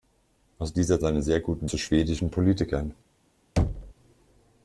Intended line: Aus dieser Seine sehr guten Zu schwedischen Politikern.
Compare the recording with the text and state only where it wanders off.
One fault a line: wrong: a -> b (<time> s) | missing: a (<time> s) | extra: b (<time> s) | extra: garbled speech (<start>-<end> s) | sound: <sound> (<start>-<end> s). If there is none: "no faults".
sound: thud (3.6-3.9 s)